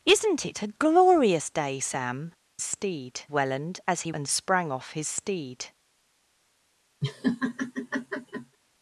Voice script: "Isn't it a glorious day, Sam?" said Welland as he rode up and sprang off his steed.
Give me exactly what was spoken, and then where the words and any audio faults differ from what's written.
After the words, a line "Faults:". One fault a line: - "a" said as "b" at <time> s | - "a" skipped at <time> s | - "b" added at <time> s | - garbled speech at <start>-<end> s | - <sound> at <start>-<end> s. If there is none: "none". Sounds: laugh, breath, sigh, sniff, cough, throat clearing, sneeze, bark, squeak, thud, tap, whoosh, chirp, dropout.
"Isn't it a glorious day, Sam?" steed Welland as he and sprang off his steed.
Faults:
- "said" said as "steed" at 2.6 s
- "rode up" skipped at 4.1 s
- laugh at 7.0-8.6 s